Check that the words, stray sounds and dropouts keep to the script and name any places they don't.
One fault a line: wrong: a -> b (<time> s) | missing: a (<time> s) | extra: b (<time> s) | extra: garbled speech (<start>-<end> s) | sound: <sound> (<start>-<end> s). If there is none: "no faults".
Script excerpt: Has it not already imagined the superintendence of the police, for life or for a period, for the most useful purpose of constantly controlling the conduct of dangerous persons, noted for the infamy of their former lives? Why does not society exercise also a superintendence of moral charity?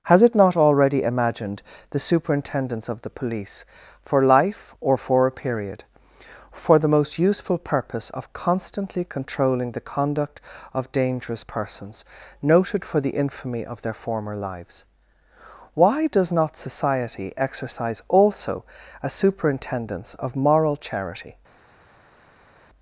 no faults